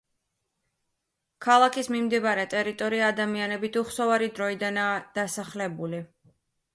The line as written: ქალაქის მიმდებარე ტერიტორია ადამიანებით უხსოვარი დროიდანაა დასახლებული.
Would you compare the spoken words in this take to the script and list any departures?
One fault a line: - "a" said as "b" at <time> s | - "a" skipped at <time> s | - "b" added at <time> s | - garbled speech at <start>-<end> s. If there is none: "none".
none